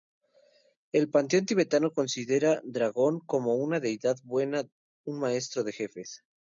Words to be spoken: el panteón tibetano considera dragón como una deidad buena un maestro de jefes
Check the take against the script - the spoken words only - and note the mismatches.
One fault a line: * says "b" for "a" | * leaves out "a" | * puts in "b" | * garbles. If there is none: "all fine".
all fine